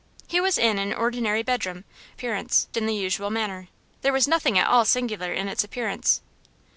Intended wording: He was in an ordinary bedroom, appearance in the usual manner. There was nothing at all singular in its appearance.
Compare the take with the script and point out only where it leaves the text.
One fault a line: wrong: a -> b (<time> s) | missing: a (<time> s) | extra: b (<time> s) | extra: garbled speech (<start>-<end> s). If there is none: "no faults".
no faults